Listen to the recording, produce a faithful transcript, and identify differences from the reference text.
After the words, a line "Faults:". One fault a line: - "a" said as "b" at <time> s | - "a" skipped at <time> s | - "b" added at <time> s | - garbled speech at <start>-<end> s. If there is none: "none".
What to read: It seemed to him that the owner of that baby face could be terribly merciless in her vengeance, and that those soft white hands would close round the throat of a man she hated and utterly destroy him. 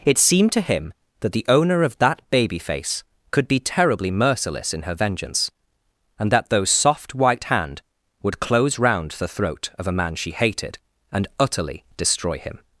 It seemed to him that the owner of that baby face could be terribly merciless in her vengeance, and that those soft white hand would close round the throat of a man she hated and utterly destroy him.
Faults:
- "hands" said as "hand" at 7.5 s